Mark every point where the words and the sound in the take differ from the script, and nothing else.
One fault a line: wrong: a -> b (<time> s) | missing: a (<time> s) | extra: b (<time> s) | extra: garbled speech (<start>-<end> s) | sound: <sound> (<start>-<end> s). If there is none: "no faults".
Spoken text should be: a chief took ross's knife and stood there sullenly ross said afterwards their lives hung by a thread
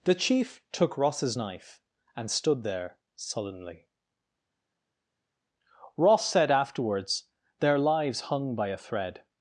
wrong: a -> the (0.0 s)